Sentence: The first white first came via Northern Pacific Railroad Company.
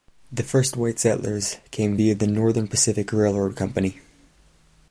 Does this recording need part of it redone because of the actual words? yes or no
yes